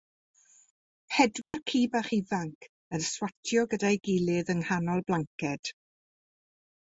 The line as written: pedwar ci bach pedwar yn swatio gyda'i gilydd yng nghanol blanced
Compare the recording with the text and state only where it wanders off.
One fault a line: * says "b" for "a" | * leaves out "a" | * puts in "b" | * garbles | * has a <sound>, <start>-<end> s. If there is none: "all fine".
* has a dropout, 1.4-1.5 s
* says "ifanc" for "pedwar"